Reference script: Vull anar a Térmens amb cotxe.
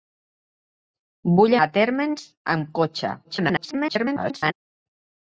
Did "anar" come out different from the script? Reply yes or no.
yes